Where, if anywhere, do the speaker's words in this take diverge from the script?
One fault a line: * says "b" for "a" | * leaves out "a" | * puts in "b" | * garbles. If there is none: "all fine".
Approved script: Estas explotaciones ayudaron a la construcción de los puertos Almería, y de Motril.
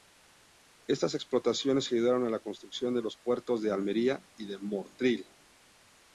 * puts in "de"